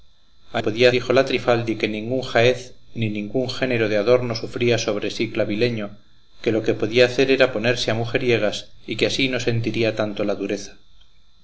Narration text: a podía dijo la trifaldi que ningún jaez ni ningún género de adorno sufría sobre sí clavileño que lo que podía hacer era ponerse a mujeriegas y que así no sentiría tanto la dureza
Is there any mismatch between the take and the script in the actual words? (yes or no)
no